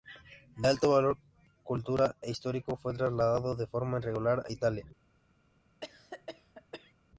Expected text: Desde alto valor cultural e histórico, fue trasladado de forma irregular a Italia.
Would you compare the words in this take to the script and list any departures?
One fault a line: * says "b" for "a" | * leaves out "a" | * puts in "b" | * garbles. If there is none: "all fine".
* says "De" for "Desde"